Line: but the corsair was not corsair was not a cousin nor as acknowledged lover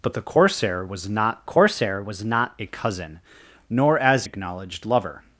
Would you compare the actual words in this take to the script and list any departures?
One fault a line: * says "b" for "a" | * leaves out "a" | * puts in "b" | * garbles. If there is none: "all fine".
all fine